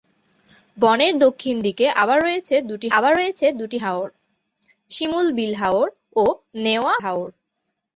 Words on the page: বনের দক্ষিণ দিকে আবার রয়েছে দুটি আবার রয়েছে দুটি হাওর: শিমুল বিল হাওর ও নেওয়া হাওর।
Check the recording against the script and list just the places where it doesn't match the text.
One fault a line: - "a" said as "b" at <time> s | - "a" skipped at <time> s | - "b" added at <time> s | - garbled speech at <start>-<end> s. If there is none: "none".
none